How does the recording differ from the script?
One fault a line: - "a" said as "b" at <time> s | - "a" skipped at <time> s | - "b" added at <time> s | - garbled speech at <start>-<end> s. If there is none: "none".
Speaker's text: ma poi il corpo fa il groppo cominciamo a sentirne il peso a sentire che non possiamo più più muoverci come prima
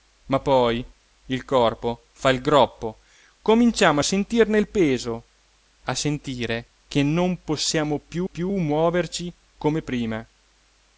none